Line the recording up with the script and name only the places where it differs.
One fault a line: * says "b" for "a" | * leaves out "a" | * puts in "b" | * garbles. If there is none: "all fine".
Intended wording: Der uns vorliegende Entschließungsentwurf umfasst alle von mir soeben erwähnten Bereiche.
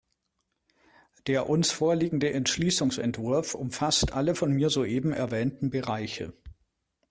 all fine